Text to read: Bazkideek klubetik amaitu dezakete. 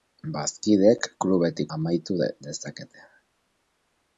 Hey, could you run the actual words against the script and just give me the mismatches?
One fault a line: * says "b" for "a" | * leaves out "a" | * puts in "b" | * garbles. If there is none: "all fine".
all fine